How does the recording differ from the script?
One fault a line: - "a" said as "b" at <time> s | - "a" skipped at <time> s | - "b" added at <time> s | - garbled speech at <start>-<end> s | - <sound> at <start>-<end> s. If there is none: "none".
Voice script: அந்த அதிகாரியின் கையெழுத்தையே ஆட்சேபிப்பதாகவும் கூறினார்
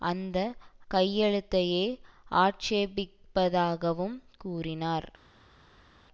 - "அதிகாரியின்" skipped at 0.4 s